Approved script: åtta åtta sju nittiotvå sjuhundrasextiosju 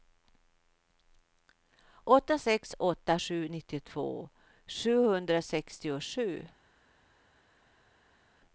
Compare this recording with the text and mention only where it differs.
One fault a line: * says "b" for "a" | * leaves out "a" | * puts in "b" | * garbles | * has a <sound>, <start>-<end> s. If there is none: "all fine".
* puts in "sex"